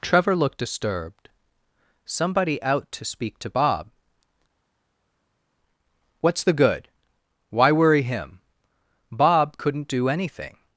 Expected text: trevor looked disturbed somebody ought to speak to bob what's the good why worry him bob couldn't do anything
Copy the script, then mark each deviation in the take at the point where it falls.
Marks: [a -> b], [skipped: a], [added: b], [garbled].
trevor looked disturbed somebody [ought -> out] to speak to bob what's the good why worry him bob couldn't do anything